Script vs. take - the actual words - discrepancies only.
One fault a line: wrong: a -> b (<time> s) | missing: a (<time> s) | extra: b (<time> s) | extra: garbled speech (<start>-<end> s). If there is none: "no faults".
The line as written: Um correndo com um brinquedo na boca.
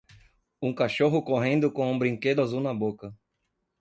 extra: cachorro (0.7 s)
extra: azul (2.4 s)